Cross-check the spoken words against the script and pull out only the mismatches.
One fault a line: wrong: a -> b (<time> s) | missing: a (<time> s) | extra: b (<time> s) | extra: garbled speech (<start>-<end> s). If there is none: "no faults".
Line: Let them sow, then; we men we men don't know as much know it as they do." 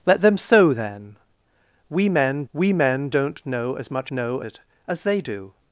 no faults